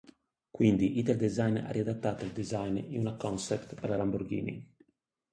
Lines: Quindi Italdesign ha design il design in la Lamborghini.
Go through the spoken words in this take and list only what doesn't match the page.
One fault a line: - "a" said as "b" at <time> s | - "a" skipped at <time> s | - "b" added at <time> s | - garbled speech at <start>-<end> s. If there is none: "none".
- "design" said as "riadattato" at 1.7 s
- "una concept per" added at 3.0 s